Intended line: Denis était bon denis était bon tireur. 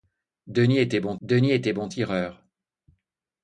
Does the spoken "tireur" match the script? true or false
true